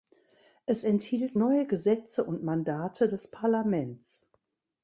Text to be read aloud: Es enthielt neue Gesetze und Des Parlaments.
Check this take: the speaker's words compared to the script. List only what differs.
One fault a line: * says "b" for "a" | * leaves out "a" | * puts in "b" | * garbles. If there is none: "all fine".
* puts in "Mandate"